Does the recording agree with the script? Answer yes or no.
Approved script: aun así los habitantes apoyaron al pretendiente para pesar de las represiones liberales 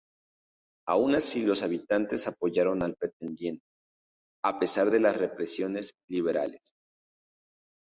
no